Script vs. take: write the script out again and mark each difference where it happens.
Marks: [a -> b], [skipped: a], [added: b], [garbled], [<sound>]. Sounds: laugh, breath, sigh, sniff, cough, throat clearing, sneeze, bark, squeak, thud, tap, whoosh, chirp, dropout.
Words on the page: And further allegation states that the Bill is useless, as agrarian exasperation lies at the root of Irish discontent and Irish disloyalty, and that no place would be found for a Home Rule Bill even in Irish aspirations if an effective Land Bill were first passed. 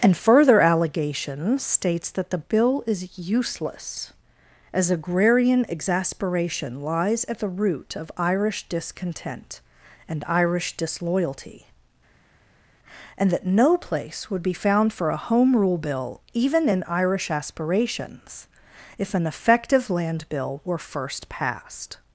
And further allegation states that the Bill is useless, as agrarian exasperation lies at the root of Irish discontent and Irish disloyalty, and that no place would be found for a Home Rule Bill even in Irish aspirations if an effective Land Bill were first passed.